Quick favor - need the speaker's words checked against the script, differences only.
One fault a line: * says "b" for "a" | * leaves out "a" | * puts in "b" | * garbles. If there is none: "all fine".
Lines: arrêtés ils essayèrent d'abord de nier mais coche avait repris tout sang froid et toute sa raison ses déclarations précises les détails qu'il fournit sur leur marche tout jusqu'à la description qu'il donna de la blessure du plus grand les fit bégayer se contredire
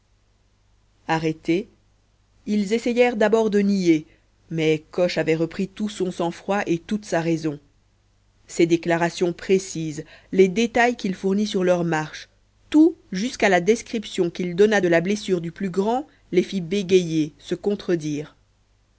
* puts in "son"